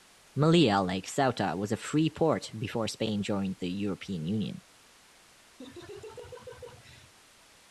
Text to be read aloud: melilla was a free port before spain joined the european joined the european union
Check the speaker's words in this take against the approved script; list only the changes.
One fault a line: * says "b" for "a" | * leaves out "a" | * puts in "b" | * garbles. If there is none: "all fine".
* puts in "like ceuta"
* leaves out "joined the european"